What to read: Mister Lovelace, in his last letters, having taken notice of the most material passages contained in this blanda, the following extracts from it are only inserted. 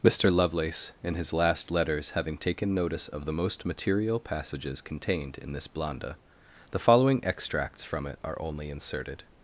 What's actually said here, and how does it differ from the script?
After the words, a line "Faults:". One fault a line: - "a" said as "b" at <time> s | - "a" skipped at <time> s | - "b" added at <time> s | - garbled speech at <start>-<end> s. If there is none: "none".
Mister Lovelace, in his last letters, having taken notice of the most material passages contained in this blanda, the following extracts from it are only inserted.
Faults:
none